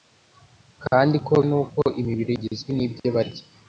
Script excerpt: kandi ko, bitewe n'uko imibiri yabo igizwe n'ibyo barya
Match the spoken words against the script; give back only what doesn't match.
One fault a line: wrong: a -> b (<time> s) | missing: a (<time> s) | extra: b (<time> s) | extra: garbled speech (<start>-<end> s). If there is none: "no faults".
missing: bitewe (1.3 s)
missing: yabo (2.3 s)